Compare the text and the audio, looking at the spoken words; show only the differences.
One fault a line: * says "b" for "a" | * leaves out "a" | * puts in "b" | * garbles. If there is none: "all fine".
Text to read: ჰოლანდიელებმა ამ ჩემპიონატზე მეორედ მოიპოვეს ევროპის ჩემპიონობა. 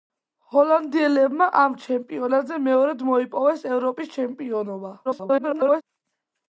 * garbles